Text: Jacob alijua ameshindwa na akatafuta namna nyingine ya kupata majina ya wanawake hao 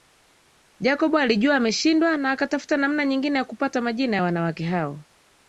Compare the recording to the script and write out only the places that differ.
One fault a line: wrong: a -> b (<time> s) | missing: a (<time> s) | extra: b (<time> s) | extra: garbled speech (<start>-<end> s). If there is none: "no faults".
no faults